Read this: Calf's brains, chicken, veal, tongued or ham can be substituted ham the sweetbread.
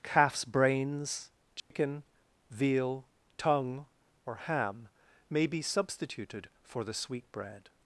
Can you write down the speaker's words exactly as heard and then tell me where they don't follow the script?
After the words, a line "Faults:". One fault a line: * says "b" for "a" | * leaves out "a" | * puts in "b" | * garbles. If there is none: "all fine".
Calf's brains, chicken, veal, tongue or ham may be substituted for the sweetbread.
Faults:
* says "tongue" for "tongued"
* says "may" for "can"
* says "for" for "ham"